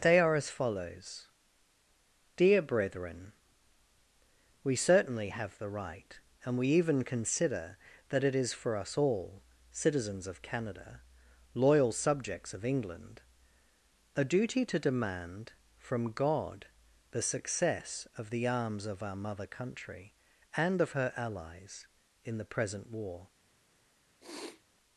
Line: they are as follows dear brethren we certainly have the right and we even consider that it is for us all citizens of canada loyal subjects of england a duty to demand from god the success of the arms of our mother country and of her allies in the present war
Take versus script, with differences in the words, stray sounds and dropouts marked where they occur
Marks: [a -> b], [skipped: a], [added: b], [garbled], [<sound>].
they are as follows dear brethren we certainly have the right and we even consider that it is for us all citizens of canada loyal subjects of england a duty to demand from god the success of the arms of our mother country and of her allies in the present war [sniff]